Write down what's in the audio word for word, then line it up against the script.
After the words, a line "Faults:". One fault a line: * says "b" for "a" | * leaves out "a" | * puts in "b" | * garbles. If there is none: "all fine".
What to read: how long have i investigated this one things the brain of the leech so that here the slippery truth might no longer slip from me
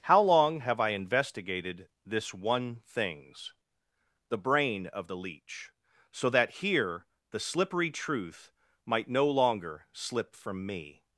how long have i investigated this one things the brain of the leech so that here the slippery truth might no longer slip from me
Faults:
all fine